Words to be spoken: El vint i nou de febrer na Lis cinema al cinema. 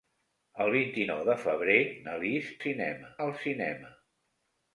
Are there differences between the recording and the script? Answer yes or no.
no